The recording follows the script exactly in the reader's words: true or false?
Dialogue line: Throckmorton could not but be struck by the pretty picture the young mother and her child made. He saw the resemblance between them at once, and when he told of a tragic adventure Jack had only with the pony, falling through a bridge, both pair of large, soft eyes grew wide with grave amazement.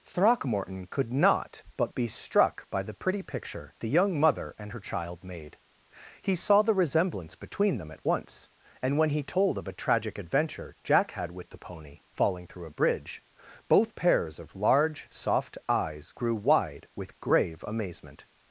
false